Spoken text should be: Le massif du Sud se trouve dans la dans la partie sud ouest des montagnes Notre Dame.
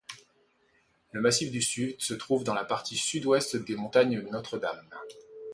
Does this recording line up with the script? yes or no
no